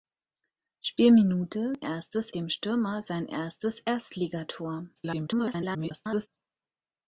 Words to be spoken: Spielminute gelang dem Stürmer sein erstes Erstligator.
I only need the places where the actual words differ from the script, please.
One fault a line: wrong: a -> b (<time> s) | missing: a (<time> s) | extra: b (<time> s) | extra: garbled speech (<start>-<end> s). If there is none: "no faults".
wrong: gelang -> erstes (1.8 s)
extra: garbled speech (5.0-6.3 s)